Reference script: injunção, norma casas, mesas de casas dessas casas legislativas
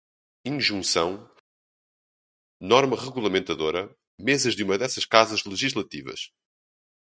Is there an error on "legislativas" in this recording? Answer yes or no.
no